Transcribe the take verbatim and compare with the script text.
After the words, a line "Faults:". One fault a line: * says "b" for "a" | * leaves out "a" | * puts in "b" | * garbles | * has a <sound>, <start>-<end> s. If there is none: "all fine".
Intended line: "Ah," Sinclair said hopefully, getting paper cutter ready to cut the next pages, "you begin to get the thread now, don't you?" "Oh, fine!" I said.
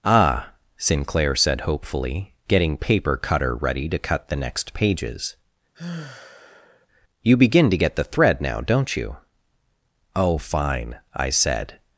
"Ah," Sinclair said hopefully, getting paper cutter ready to cut the next pages, "you begin to get the thread now, don't you?" "Oh, fine!" I said.
Faults:
* has a sigh, 5.7-6.9 s